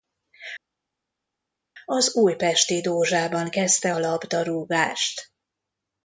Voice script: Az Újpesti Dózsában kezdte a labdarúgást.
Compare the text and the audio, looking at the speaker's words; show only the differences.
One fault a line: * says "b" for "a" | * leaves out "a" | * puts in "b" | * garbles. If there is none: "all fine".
all fine